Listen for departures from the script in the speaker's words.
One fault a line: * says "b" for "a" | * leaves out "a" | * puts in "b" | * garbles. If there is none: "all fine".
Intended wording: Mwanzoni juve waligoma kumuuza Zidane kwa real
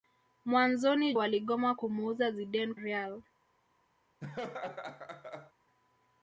* leaves out "juve"
* leaves out "kwa"